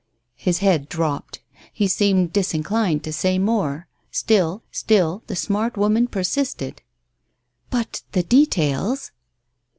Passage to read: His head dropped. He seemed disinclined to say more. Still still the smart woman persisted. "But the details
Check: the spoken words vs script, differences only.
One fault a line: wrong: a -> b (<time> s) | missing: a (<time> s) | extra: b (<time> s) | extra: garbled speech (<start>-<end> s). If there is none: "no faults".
no faults